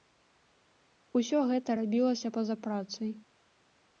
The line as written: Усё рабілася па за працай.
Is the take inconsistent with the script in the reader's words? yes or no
yes